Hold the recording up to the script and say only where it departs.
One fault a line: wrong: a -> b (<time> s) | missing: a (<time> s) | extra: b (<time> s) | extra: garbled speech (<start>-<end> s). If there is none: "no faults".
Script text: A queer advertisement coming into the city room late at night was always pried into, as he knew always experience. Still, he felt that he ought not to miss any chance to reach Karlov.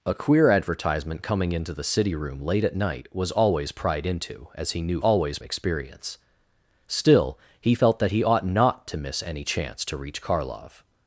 no faults